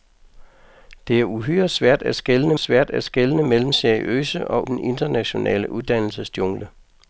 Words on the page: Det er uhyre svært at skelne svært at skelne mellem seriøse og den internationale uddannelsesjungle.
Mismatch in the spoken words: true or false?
false